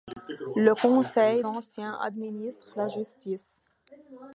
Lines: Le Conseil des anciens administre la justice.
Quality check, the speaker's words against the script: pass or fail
fail